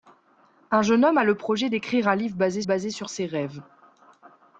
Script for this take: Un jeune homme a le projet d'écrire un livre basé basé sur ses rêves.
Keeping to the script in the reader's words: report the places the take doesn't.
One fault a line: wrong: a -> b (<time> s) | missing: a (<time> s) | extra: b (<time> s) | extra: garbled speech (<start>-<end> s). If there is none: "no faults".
no faults